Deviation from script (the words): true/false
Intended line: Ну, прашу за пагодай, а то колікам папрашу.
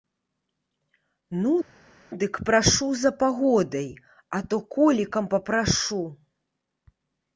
true